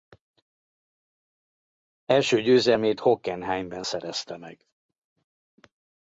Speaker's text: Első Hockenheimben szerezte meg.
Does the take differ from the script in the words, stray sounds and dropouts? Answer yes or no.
yes